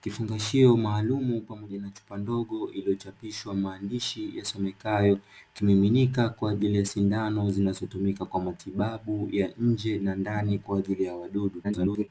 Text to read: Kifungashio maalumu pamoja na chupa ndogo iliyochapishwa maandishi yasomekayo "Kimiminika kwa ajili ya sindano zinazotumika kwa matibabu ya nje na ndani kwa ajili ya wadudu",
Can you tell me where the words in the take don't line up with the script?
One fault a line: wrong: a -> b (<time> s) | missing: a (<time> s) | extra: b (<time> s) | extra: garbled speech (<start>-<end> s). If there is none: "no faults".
extra: garbled speech (11.6-12.1 s)